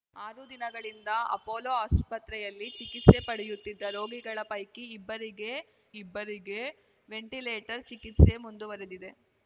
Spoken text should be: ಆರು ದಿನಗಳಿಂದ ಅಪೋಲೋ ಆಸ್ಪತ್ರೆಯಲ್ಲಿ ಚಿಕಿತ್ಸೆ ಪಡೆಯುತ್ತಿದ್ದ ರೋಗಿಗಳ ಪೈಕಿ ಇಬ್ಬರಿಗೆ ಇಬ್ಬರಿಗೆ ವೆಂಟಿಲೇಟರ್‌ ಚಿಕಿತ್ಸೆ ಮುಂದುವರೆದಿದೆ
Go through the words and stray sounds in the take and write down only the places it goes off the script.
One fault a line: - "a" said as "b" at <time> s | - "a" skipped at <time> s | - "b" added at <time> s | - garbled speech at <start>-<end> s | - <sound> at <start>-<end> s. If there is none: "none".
none